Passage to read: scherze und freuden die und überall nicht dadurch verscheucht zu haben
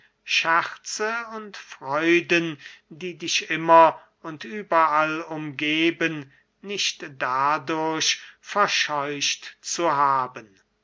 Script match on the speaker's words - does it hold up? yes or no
no